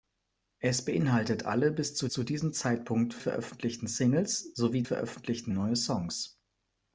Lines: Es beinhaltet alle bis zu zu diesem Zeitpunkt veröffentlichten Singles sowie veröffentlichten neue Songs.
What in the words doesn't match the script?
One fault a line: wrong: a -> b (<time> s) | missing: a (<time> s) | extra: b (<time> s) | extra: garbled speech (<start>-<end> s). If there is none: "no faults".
no faults